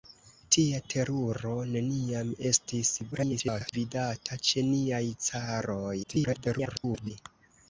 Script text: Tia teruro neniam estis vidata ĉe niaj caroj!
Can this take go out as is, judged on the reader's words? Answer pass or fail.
fail